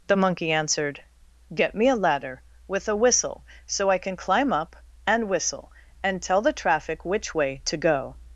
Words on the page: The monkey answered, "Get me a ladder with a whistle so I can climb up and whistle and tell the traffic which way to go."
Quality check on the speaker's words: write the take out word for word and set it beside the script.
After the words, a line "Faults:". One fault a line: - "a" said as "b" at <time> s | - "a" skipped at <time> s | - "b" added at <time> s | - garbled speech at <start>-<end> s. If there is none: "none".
The monkey answered, "Get me a ladder with a whistle so I can climb up and whistle and tell the traffic which way to go."
Faults:
none